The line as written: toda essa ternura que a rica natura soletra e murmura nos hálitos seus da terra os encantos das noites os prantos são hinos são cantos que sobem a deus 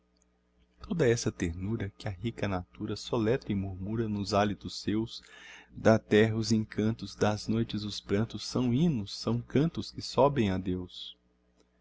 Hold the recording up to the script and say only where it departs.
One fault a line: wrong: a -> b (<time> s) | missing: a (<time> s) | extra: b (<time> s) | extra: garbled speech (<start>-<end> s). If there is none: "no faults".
no faults